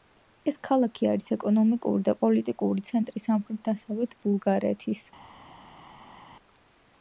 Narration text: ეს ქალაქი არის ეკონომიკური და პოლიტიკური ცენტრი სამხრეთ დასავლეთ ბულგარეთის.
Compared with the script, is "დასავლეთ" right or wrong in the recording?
right